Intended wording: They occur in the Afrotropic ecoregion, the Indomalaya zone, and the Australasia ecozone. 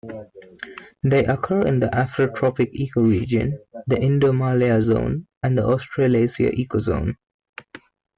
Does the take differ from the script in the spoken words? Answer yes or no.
no